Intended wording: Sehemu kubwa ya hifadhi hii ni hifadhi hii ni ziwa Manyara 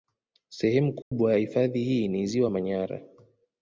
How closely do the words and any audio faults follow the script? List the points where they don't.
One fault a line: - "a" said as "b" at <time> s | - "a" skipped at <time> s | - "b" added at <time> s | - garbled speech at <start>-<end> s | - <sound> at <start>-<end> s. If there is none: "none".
- dropout at 1.0-1.1 s
- "hifadhi hii ni" skipped at 2.3 s